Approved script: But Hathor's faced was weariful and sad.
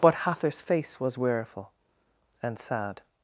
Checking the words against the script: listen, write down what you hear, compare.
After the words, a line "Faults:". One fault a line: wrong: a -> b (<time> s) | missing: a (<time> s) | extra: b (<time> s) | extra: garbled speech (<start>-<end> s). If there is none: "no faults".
But Hathor's face was weariful and sad.
Faults:
wrong: faced -> face (0.6 s)